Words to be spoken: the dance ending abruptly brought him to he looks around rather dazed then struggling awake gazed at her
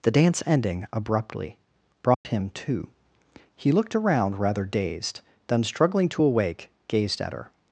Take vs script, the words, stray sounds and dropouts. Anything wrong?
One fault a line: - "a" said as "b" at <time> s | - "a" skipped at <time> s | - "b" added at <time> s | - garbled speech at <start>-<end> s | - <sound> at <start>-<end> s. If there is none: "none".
- dropout at 2.1-2.3 s
- "looks" said as "looked" at 3.7 s
- "to" added at 6.1 s